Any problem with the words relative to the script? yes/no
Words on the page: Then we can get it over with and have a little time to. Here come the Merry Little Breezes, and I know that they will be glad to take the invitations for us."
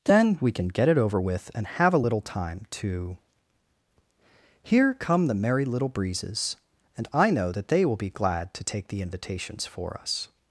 no